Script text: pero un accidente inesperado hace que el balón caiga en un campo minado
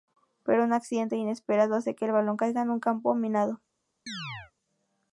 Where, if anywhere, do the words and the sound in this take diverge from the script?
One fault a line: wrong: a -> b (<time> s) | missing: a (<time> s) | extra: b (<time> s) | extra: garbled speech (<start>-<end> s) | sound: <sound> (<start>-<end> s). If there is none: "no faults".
sound: chirp (4.1-4.5 s)